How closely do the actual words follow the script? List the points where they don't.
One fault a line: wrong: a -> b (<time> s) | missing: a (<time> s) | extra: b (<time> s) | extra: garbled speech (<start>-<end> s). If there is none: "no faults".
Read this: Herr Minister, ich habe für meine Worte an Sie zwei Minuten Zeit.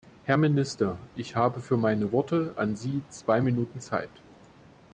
no faults